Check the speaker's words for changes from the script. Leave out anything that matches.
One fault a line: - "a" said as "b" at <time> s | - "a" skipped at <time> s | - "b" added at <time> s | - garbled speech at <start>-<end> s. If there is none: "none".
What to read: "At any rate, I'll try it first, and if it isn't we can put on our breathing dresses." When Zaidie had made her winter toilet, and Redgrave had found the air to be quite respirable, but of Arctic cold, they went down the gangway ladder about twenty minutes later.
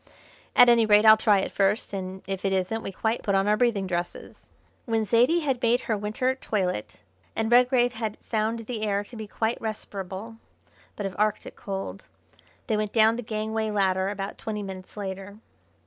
- "can" said as "quite" at 2.9 s